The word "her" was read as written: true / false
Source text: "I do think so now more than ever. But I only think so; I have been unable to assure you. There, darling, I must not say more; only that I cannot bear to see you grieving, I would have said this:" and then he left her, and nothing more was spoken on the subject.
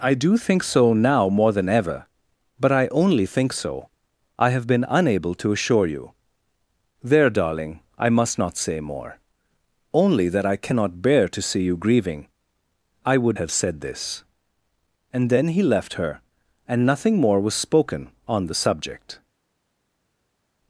true